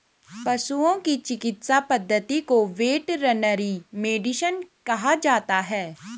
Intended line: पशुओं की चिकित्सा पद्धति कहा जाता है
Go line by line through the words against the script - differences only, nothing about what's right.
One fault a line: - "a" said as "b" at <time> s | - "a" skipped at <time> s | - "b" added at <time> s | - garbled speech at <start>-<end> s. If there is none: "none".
- "को वेटरनरी मेडिसिन" added at 2.4 s